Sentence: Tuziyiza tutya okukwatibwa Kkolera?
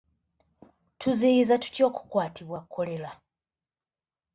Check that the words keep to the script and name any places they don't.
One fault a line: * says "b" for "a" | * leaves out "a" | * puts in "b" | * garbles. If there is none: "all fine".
all fine